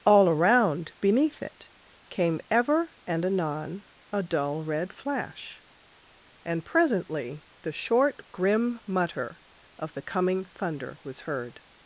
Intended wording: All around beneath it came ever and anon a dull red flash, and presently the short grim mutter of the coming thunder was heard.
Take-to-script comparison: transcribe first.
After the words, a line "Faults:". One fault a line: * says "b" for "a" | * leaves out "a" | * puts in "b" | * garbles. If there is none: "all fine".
All around beneath it came ever and anon a dull red flash, and presently the short grim mutter of the coming thunder was heard.
Faults:
all fine